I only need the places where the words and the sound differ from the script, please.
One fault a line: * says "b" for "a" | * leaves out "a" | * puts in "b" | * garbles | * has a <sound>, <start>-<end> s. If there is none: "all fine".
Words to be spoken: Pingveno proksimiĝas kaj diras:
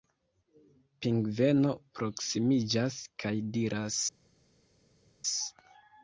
all fine